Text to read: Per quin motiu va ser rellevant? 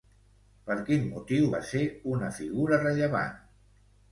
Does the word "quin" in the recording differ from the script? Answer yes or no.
no